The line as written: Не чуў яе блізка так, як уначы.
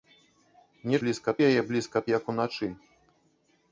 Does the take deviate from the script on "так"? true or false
true